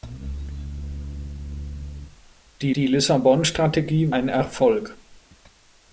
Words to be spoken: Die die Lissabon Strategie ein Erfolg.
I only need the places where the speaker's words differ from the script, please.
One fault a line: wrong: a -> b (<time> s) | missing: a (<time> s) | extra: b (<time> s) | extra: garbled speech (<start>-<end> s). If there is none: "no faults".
no faults